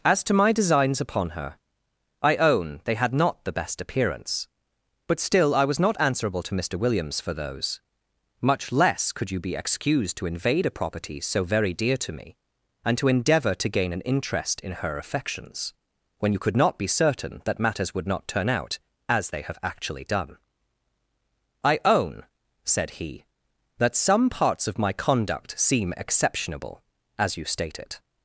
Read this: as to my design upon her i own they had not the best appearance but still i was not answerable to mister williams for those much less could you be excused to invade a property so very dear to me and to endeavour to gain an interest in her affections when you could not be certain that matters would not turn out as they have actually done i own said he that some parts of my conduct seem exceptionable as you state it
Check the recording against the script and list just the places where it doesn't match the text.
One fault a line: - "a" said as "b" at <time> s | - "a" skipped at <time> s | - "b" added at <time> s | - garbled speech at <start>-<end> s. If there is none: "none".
- "design" said as "designs" at 0.5 s